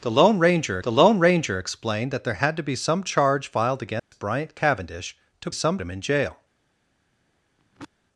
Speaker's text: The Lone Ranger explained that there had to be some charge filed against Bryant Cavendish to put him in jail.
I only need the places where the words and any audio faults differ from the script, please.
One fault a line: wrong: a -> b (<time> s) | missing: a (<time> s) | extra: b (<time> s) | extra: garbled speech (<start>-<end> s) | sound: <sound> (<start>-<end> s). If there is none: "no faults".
extra: the Lone Ranger (0.8 s)
sound: dropout (4.0-4.1 s)
wrong: put -> some (5.5 s)
sound: throat clearing (7.6-7.9 s)